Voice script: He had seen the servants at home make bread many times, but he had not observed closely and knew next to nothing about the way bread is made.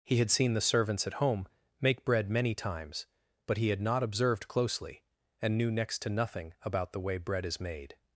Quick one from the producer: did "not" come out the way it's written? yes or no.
yes